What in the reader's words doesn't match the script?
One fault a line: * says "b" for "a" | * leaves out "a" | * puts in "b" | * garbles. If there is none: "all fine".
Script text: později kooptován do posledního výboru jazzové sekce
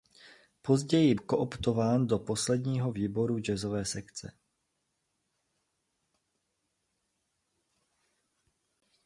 all fine